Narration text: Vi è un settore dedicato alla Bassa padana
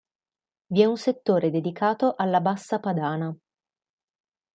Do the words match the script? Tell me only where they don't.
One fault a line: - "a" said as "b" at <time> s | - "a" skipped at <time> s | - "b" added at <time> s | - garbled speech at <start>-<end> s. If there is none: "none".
none